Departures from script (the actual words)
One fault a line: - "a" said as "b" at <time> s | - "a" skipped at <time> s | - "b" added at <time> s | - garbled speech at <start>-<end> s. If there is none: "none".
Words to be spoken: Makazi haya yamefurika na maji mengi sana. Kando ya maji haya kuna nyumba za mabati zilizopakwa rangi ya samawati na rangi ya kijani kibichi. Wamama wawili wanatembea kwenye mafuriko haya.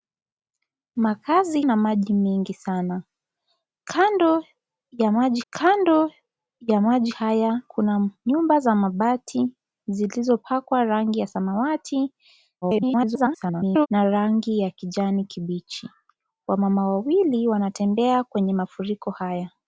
- "haya yamefurika" skipped at 1.6 s
- "kando ya maji" added at 5.5 s
- garbled speech at 12.6-13.9 s